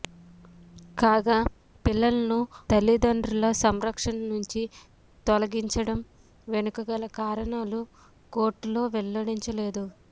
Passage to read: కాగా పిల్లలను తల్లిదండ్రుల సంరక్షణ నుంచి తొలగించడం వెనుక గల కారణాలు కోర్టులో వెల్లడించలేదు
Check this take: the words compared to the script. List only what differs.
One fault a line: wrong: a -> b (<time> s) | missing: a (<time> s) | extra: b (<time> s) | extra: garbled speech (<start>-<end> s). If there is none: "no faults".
no faults